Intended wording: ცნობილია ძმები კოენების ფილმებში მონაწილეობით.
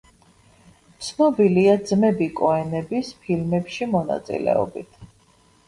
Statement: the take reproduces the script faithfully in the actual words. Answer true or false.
true